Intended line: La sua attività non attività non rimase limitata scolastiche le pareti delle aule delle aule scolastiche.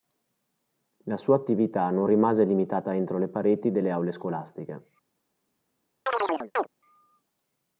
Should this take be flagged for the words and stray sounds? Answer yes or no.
yes